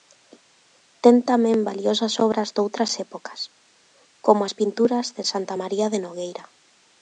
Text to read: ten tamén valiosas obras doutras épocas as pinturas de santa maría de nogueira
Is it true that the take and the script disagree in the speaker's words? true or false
true